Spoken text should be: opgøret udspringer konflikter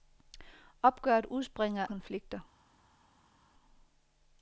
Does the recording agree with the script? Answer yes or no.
yes